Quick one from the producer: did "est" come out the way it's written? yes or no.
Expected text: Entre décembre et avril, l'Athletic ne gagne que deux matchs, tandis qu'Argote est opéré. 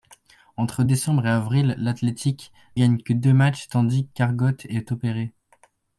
yes